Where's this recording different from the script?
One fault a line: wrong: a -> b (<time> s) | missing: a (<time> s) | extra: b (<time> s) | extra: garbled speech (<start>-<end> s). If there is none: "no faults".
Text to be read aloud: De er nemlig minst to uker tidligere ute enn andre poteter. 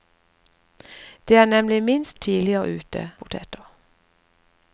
missing: to uker (2.2 s)
missing: enn andre (3.0 s)